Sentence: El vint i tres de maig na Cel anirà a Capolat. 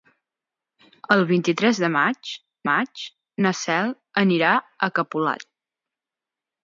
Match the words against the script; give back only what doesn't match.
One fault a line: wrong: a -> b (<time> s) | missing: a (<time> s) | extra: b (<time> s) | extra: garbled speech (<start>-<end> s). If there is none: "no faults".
extra: maig (2.7 s)